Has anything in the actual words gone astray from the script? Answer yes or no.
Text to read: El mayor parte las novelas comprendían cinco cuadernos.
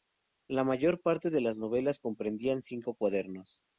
yes